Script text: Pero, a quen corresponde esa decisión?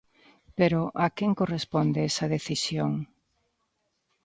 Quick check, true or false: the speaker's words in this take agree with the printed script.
true